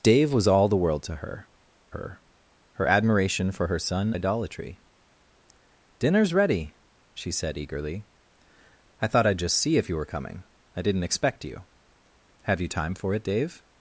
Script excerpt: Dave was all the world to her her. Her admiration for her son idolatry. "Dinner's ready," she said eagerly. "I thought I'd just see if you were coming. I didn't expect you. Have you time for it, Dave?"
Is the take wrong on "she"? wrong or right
right